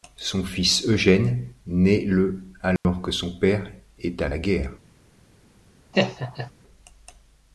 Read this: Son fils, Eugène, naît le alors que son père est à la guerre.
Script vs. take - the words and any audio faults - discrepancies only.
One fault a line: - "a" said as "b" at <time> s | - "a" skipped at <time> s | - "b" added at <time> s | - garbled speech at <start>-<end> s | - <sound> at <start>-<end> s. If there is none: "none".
- dropout at 2.8-2.8 s
- laugh at 5.9-6.5 s